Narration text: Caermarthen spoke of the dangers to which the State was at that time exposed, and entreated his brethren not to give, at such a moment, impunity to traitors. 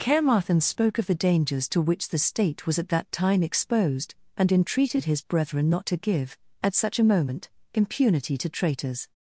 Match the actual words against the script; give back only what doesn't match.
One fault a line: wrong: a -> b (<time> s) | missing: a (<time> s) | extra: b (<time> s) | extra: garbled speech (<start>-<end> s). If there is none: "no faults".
no faults